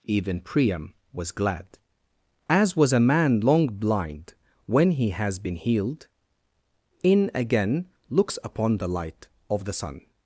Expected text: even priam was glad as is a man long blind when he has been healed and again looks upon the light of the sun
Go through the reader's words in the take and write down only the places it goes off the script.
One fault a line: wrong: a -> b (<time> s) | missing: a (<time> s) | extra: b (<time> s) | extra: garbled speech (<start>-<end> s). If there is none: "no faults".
wrong: is -> was (2.8 s)
wrong: and -> in (7.0 s)